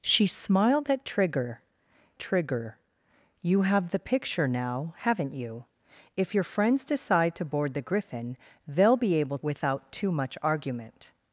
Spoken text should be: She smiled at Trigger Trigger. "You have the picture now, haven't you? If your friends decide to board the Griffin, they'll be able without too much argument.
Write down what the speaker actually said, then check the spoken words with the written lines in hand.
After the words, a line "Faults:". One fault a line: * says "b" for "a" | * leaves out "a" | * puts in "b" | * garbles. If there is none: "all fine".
She smiled at Trigger Trigger. "You have the picture now, haven't you? If your friends decide to board the Griffin, they'll be able without too much argument.
Faults:
all fine